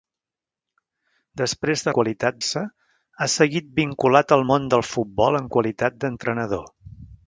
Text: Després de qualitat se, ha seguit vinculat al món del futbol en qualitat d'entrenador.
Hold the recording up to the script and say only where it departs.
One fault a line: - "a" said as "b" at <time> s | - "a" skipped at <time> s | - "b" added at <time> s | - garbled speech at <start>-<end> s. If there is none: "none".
none